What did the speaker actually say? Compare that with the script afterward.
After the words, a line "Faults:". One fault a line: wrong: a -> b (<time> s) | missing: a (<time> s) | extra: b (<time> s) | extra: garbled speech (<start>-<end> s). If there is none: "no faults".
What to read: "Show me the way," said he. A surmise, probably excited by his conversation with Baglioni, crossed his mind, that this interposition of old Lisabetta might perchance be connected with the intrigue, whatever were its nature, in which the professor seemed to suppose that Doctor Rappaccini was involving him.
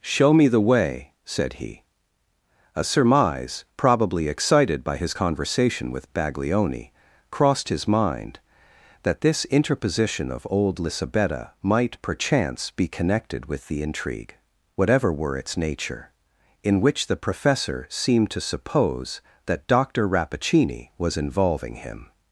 "Show me the way," said he. A surmise, probably excited by his conversation with Baglioni, crossed his mind, that this interposition of old Lisabetta might perchance be connected with the intrigue, whatever were its nature, in which the professor seemed to suppose that Doctor Rappaccini was involving him.
Faults:
no faults